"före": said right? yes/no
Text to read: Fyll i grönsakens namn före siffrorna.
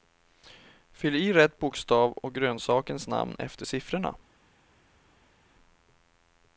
no